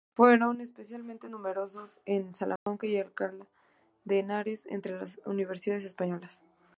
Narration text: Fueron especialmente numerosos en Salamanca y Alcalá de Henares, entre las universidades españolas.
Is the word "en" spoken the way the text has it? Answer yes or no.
yes